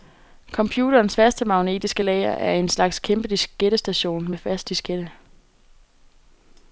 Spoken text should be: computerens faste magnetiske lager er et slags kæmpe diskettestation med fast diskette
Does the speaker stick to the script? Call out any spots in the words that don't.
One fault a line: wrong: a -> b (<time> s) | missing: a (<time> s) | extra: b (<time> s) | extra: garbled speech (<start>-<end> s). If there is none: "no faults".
wrong: et -> en (2.5 s)